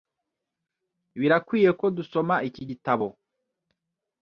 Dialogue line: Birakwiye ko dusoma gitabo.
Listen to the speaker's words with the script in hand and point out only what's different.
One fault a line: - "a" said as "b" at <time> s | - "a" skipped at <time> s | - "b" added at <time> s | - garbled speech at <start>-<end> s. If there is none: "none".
- "iki" added at 2.5 s